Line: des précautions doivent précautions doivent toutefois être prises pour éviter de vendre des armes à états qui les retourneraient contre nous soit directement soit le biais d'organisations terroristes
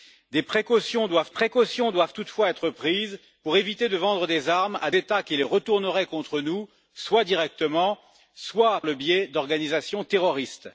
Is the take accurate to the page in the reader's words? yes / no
yes